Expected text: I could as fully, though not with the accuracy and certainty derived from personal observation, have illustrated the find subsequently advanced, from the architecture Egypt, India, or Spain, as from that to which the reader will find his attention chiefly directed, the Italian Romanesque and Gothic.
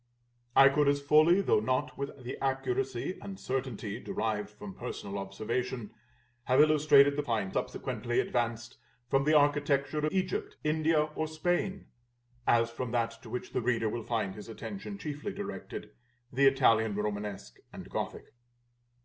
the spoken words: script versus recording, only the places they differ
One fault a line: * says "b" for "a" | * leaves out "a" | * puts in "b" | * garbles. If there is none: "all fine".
all fine